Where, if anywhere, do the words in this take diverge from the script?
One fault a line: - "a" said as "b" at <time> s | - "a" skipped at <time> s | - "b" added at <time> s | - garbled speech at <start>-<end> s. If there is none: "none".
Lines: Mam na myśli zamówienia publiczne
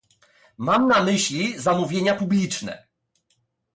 none